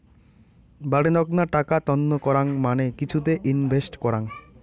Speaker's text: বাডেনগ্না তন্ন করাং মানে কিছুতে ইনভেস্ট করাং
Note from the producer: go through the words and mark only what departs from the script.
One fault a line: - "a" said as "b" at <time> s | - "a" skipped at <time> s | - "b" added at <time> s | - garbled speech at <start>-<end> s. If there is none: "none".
- "টাকা" added at 1.6 s